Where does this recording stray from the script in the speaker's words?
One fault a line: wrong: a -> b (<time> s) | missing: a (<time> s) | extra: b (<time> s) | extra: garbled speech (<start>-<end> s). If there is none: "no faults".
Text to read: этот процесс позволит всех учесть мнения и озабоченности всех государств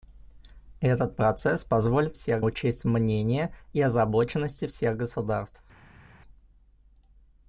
no faults